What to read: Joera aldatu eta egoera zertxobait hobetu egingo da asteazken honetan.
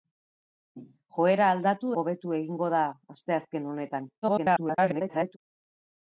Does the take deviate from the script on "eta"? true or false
true